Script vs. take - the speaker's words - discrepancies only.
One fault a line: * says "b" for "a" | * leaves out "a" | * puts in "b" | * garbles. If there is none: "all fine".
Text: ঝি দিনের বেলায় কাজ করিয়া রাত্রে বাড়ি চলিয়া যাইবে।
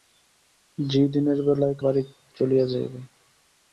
* leaves out "কাজ করিয়া রাত্রে"